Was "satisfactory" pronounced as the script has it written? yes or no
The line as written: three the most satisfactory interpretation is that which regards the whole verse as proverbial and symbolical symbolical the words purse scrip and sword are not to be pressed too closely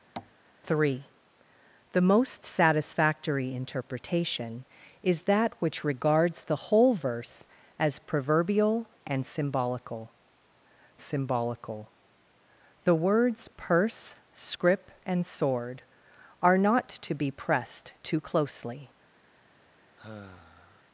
yes